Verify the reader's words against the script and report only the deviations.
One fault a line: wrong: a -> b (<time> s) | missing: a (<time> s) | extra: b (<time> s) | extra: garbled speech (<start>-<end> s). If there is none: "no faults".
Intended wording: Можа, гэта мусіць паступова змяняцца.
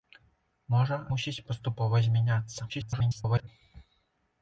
missing: гэта (1.0 s)
extra: garbled speech (2.7-3.5 s)